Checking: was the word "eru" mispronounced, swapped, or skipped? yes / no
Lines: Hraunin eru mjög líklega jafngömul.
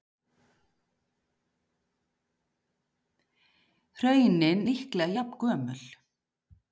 yes